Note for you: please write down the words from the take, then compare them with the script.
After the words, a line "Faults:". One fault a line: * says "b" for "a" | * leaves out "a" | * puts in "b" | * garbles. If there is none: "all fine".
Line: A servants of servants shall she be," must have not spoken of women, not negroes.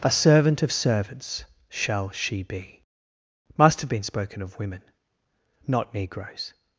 A servant of servants shall she be," must have been spoken of women, not negroes.
Faults:
* says "servant" for "servants"
* says "been" for "not"